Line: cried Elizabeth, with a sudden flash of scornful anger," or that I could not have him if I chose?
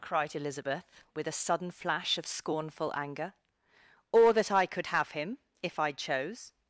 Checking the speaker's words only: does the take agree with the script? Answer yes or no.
no